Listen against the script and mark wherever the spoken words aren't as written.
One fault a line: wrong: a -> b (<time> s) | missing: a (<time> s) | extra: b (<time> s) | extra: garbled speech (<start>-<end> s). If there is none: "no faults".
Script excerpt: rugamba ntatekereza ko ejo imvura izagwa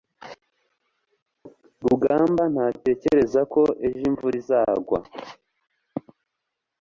no faults